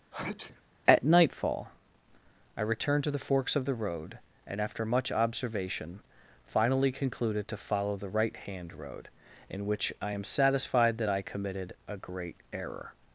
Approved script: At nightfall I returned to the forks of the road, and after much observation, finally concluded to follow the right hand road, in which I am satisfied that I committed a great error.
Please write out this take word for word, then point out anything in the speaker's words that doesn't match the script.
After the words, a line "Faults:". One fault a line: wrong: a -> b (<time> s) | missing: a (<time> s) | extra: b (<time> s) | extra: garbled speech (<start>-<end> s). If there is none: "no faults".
At nightfall I returned to the forks of the road, and after much observation, finally concluded to follow the right hand road, in which I am satisfied that I committed a great error.
Faults:
no faults